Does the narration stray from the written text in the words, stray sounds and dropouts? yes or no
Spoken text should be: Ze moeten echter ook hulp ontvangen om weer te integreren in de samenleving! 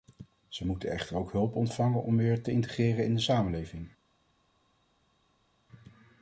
no